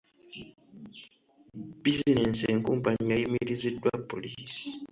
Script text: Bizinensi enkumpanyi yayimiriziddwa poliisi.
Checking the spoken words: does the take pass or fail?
pass